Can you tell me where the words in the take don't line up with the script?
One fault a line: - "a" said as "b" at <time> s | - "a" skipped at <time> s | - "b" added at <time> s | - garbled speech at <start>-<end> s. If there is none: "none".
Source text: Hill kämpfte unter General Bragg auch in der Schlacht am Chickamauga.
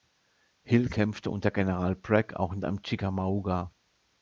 - "der Schlacht" skipped at 2.6 s